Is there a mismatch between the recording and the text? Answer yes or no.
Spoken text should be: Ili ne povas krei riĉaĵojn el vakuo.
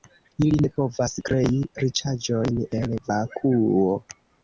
no